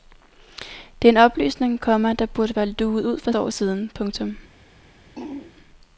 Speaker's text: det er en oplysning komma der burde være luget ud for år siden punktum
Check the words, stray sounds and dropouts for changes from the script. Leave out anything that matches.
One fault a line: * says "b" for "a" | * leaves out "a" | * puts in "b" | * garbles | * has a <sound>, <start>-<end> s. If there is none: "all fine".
* has a throat clearing, 5.2-5.5 s